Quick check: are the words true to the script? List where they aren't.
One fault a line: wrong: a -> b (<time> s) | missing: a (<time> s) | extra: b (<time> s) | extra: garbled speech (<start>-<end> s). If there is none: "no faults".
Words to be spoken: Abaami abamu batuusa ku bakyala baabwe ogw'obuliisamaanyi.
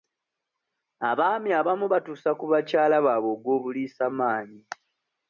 no faults